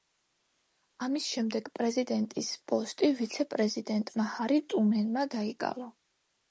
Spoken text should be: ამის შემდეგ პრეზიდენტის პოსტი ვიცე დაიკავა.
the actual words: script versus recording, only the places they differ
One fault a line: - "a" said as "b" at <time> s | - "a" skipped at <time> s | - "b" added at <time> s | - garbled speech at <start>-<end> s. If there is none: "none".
- "პრეზიდენტმა ჰარი ტრუმენმა" added at 3.5 s